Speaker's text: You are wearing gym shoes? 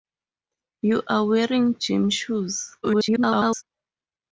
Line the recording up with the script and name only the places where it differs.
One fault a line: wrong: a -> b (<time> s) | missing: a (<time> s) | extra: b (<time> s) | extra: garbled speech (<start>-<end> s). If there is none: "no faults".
extra: garbled speech (2.8-3.6 s)